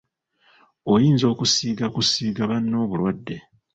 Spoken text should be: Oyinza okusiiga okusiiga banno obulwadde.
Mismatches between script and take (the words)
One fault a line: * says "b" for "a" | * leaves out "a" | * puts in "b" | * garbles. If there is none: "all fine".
all fine